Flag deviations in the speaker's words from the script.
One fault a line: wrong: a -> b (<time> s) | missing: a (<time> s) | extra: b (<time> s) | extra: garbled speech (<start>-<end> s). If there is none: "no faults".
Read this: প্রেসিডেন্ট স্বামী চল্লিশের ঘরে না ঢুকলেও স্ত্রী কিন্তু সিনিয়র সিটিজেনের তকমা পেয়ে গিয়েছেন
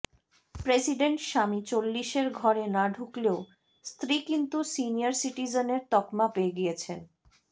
no faults